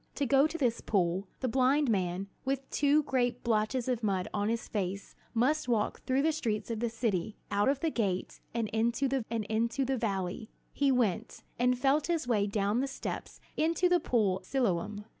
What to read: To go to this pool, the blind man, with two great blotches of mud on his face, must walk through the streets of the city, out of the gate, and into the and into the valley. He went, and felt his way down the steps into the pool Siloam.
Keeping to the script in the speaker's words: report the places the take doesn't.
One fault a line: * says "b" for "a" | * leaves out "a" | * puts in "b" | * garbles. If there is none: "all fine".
all fine